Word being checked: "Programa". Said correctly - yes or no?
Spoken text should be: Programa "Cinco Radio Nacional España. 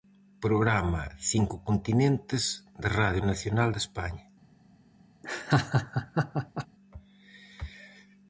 yes